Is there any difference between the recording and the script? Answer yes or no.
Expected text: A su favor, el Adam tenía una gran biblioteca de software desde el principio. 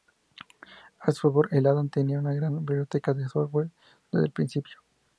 no